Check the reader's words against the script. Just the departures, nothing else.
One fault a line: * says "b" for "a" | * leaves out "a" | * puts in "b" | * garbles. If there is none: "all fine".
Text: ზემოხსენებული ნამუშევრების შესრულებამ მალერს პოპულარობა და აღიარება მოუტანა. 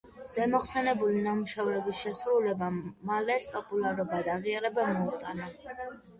all fine